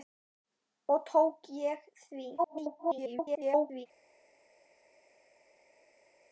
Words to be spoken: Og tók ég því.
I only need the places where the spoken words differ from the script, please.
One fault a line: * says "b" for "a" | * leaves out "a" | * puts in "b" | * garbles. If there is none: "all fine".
* garbles